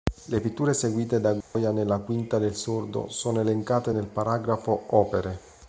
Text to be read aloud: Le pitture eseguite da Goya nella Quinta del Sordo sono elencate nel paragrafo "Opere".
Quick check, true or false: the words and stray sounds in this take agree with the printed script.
false